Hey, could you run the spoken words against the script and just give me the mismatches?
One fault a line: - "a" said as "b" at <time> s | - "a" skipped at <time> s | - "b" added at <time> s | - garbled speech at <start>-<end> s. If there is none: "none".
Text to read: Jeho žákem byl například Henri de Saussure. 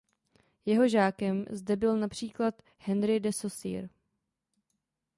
- "zde" added at 1.5 s